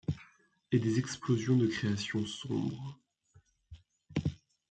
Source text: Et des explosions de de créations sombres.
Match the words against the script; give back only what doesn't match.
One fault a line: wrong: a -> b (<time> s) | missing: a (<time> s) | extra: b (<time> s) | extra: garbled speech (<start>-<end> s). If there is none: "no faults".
missing: de (1.7 s)